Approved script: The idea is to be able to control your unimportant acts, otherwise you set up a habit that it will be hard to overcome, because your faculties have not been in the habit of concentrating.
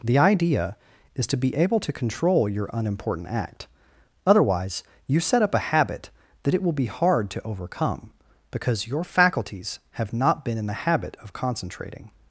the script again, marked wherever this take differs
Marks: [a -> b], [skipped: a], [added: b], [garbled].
The idea is to be able to control your unimportant [acts, -> act] otherwise you set up a habit that it will be hard to overcome, because your faculties have not been in the habit of concentrating.